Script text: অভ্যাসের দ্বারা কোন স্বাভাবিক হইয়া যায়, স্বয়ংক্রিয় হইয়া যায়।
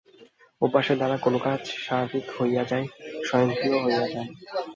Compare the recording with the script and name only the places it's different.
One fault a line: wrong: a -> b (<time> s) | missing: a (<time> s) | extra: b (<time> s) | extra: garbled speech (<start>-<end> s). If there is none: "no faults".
extra: কাজ (1.4 s)